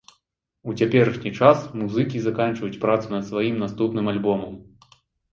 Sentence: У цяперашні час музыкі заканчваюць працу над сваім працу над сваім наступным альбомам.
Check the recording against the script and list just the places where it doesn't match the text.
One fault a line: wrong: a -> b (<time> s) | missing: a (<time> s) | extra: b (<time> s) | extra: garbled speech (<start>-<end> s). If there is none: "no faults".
missing: працу над сваім (3.6 s)